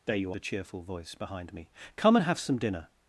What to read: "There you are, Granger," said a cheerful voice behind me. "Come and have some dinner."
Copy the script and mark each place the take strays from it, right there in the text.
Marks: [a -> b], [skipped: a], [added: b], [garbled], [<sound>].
"There you [skipped: are, Granger," said] a cheerful voice behind me. "Come and have some dinner."